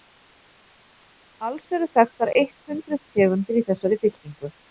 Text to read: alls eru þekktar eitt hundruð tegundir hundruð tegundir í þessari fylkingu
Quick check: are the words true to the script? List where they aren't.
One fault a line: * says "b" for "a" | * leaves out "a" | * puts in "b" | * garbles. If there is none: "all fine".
* leaves out "hundruð tegundir"